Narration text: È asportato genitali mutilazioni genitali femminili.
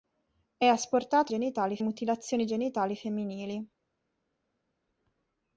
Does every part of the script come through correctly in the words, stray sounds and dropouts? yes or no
yes